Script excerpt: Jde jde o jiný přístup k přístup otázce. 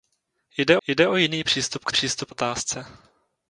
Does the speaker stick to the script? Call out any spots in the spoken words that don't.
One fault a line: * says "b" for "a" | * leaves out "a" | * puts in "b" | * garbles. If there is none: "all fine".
all fine